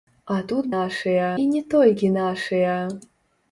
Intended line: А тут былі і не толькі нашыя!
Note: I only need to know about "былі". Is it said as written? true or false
false